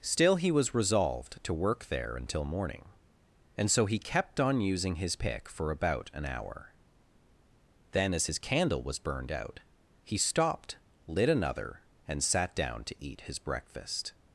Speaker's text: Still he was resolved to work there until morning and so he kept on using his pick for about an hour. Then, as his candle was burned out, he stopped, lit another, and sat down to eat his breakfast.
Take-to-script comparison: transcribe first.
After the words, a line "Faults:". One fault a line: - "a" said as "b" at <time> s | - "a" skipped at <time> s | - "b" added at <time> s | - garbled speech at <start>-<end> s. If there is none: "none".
Still he was resolved to work there until morning and so he kept on using his pick for about an hour. Then, as his candle was burned out, he stopped, lit another, and sat down to eat his breakfast.
Faults:
none